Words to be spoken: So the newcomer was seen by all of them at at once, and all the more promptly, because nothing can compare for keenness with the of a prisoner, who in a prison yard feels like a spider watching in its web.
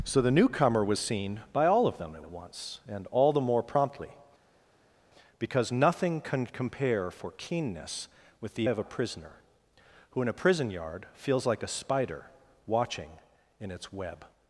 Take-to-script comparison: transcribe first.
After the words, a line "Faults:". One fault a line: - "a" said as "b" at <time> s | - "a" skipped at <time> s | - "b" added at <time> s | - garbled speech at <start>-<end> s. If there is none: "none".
So the newcomer was seen by all of them at at once, and all the more promptly, because nothing can compare for keenness with the of a prisoner, who in a prison yard feels like a spider watching in its web.
Faults:
none